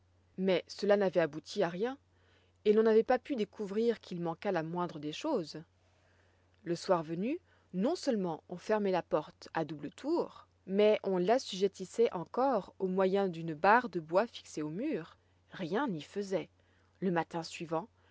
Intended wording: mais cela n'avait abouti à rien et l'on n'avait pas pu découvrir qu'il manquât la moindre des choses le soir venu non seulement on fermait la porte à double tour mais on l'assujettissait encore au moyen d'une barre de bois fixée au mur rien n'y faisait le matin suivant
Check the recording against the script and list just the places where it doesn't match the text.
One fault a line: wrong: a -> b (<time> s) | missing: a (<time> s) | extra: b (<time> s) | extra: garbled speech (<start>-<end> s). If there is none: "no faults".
no faults